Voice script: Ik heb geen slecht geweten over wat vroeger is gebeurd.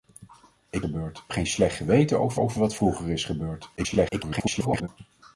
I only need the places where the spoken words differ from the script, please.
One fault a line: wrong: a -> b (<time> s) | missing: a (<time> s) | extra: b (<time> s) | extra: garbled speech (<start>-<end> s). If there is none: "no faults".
wrong: heb -> gebeurd (0.8 s)
extra: over (2.4 s)
extra: garbled speech (3.8-4.9 s)